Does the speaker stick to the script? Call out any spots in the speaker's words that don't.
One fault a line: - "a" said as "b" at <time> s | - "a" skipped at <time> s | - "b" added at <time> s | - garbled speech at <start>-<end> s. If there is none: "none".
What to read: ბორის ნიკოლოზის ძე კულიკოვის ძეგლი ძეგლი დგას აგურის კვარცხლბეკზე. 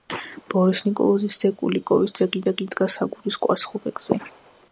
none